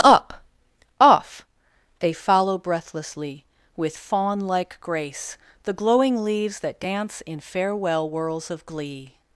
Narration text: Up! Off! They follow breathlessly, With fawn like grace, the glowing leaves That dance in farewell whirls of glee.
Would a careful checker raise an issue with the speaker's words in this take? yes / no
no